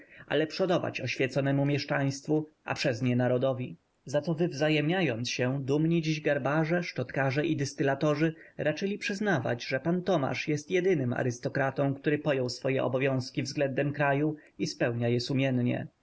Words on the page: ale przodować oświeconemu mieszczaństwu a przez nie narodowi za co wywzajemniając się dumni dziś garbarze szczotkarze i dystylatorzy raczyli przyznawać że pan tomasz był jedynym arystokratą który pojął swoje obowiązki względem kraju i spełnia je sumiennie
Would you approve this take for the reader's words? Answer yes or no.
no